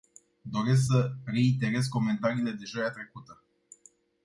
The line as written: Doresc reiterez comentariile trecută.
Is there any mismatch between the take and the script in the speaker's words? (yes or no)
yes